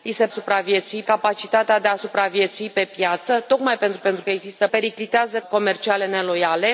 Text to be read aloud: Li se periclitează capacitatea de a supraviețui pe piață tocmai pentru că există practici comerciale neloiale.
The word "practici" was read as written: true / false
false